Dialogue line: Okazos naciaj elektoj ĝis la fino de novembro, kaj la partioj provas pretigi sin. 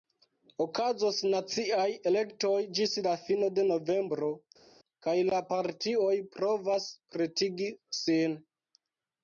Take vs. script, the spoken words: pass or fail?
pass